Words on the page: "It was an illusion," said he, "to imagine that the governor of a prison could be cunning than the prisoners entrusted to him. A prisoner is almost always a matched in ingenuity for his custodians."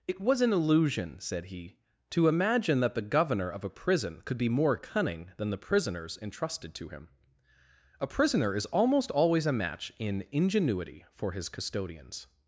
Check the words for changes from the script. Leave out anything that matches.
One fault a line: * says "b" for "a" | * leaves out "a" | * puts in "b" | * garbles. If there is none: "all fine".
* puts in "more"
* says "match" for "matched"